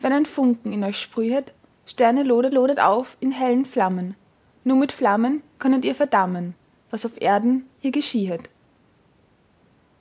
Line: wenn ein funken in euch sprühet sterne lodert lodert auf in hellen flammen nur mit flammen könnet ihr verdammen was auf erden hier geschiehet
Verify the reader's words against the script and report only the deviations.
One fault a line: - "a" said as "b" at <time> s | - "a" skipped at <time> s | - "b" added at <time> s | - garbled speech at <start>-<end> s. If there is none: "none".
none